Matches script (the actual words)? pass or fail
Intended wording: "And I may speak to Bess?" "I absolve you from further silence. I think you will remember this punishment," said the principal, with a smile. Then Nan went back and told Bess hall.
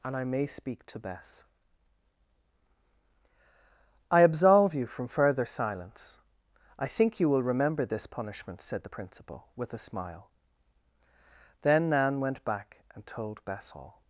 pass